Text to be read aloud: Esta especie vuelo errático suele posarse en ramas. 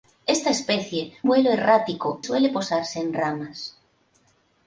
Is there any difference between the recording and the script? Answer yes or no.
no